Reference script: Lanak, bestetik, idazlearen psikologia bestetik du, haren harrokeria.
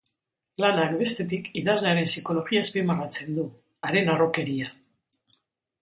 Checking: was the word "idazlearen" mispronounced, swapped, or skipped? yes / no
no